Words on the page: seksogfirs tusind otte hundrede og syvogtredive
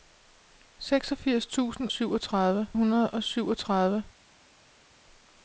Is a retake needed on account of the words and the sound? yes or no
yes